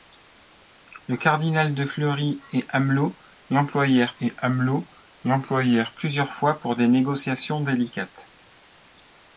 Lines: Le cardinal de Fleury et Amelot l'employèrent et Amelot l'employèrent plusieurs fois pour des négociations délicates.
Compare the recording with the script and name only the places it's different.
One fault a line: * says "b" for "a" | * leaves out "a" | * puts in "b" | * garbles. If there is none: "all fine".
all fine